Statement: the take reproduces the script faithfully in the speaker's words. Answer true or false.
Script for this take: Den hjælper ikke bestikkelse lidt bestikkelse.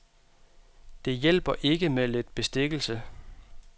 false